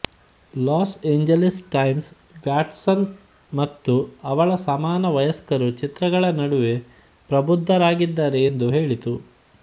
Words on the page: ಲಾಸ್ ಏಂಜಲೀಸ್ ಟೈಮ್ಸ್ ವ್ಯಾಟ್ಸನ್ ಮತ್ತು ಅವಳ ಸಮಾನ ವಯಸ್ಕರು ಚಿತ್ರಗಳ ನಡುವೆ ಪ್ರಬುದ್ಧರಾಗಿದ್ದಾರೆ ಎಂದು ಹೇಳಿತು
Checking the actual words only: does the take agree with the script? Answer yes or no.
yes